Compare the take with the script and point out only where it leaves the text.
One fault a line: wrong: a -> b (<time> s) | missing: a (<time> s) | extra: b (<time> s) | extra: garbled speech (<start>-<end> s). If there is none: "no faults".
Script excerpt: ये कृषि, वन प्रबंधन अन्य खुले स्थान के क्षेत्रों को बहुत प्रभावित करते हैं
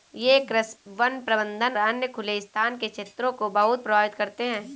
no faults